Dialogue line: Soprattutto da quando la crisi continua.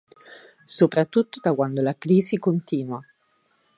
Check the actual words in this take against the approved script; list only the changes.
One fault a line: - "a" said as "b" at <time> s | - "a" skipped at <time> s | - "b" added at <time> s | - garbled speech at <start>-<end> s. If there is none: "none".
none